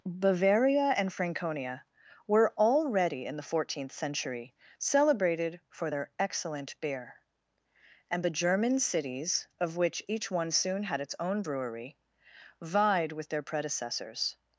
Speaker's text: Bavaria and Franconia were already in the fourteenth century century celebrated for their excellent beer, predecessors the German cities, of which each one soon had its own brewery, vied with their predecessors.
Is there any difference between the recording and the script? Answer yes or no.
yes